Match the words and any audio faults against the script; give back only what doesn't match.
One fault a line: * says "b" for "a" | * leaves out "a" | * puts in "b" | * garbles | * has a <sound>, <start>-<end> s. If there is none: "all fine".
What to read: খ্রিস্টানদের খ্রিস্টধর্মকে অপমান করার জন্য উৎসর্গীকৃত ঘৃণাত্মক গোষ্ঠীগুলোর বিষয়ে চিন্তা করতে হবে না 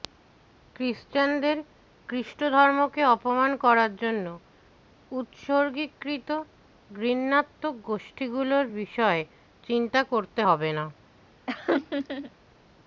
* has a laugh, 11.5-12.3 s